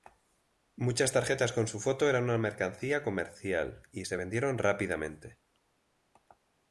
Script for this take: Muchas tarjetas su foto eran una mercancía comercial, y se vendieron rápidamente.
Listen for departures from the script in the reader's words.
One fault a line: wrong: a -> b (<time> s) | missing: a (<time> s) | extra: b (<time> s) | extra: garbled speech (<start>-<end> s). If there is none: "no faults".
extra: con (1.5 s)